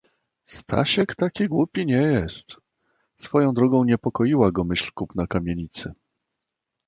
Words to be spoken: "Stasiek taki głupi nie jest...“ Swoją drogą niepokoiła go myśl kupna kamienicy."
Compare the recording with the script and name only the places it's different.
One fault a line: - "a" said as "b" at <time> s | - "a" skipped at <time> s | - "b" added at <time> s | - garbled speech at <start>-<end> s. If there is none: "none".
none